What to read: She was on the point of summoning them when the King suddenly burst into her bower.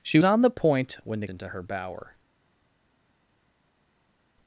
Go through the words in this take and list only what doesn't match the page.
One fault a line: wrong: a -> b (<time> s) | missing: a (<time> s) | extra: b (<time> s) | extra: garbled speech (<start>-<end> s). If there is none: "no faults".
missing: was (0.2 s)
missing: of summoning them (1.0 s)
missing: King suddenly burst (1.3 s)